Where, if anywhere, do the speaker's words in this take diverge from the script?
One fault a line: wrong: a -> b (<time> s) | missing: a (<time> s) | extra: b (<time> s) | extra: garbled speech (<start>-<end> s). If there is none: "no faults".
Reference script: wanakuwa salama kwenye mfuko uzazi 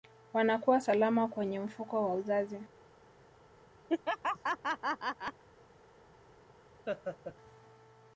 extra: wa (2.0 s)